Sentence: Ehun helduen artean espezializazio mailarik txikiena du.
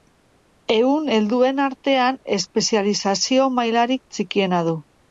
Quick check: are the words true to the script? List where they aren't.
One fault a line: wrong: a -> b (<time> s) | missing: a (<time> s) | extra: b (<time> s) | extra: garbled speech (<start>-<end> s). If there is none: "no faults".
no faults